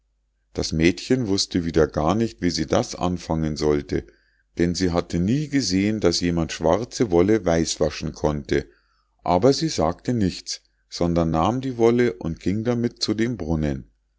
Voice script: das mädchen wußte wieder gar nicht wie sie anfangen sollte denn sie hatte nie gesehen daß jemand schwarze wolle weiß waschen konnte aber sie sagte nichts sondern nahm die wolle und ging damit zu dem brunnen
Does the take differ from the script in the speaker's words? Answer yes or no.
yes